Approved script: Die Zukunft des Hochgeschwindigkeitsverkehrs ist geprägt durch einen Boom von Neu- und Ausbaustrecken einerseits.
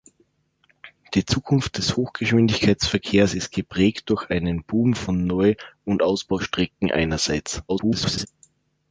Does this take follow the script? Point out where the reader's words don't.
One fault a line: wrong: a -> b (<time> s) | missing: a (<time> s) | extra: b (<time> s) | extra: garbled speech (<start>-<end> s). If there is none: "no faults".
extra: garbled speech (7.7-8.3 s)